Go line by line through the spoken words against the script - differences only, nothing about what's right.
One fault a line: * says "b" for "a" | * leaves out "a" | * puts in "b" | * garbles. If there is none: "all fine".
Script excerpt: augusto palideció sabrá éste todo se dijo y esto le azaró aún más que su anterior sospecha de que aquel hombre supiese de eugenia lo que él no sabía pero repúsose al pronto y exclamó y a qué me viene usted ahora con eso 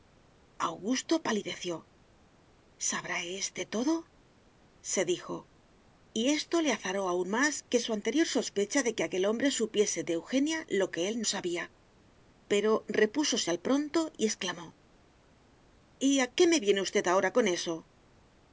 * leaves out "no"